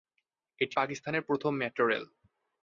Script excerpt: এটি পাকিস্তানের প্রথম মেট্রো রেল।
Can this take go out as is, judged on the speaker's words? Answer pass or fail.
pass